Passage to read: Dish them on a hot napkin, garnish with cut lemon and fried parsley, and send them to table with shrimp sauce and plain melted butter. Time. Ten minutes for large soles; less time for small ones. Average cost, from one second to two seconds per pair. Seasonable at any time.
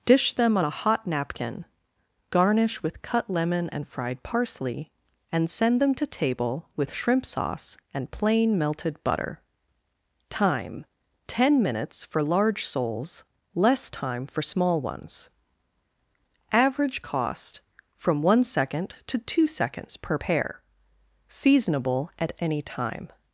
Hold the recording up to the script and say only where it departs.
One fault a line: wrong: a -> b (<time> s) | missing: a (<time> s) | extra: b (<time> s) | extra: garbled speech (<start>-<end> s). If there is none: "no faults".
no faults